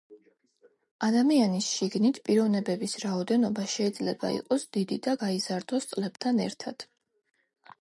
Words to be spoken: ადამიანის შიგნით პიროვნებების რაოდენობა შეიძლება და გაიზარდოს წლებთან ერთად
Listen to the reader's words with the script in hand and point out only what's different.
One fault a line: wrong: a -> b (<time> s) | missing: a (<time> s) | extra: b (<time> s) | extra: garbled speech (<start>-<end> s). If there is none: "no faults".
extra: იყოს დიდი (4.4 s)